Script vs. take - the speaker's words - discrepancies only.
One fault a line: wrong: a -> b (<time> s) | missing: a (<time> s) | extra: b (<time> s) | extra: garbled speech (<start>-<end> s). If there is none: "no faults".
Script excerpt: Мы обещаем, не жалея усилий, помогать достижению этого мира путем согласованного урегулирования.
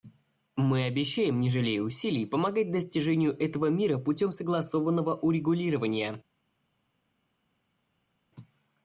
no faults